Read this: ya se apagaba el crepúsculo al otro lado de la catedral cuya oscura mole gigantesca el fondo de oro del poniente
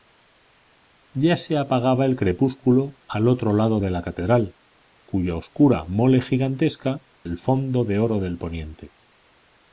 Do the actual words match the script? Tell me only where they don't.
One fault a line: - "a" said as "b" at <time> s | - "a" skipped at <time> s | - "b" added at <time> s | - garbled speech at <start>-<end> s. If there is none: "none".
none